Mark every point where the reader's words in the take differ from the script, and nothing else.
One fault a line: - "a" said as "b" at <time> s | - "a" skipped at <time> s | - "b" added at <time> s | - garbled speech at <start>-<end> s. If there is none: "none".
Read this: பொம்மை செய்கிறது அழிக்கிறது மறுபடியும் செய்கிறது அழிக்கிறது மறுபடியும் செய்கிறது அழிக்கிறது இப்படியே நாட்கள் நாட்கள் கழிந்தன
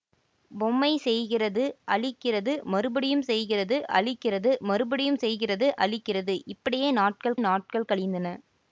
none